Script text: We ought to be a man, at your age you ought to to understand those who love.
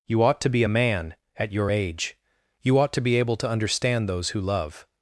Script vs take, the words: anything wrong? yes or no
yes